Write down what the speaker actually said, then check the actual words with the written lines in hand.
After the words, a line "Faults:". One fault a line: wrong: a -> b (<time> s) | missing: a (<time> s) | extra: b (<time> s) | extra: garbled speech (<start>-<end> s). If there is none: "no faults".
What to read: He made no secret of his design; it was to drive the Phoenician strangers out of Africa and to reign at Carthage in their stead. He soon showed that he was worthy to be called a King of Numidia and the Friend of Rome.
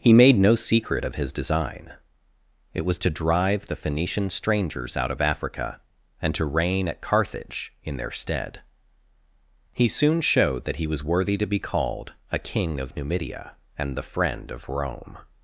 He made no secret of his design; it was to drive the Phoenician strangers out of Africa and to reign at Carthage in their stead. He soon showed that he was worthy to be called a King of Numidia and the Friend of Rome.
Faults:
no faults